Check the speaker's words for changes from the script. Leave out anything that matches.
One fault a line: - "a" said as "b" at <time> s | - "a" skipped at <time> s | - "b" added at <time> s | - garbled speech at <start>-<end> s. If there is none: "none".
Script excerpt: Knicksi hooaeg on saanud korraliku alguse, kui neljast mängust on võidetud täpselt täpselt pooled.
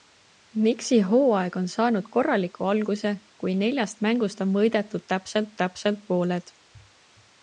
none